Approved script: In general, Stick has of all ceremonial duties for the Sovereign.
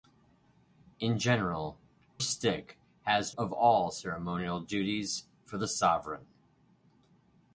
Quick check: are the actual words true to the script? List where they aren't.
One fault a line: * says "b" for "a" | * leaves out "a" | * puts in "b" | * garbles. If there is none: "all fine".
all fine